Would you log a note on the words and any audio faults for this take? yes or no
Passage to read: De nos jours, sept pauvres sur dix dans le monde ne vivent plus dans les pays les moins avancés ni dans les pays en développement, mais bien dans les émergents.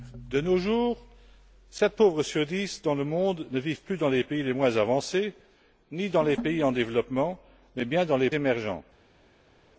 no